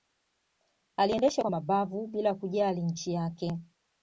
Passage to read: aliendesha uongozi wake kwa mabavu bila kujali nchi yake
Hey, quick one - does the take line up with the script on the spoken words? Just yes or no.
no